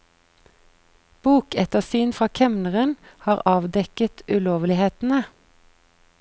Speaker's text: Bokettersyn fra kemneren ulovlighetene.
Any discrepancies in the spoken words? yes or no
yes